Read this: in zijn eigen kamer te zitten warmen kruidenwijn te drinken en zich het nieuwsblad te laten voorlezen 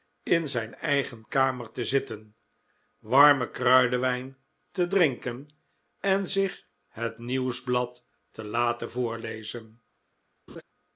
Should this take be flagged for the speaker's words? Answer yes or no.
no